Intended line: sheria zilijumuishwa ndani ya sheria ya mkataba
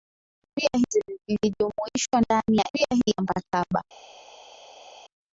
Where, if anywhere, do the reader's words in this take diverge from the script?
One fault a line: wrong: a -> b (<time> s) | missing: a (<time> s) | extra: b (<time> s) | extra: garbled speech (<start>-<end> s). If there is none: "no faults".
no faults